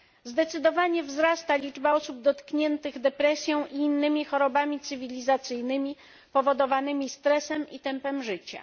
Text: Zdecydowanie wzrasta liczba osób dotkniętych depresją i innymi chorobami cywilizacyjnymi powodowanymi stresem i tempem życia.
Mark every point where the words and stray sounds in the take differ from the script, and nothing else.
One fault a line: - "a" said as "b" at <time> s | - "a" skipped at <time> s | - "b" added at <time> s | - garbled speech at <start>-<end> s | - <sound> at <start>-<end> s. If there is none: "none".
none